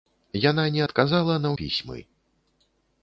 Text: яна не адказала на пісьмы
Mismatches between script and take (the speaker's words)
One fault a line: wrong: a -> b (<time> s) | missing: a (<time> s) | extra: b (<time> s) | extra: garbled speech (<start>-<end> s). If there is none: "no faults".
no faults